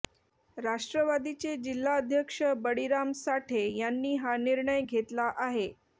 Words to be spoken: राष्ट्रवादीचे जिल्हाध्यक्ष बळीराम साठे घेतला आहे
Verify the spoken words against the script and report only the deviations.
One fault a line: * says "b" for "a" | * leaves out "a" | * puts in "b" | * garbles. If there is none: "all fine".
* puts in "यांनी हा निर्णय"